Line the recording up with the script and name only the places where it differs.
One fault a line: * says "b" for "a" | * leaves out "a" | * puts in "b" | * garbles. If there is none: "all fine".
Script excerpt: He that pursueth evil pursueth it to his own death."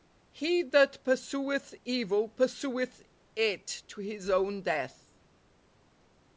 all fine